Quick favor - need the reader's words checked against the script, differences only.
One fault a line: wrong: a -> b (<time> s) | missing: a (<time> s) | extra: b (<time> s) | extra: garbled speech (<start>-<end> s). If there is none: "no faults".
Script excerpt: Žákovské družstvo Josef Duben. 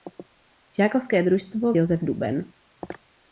no faults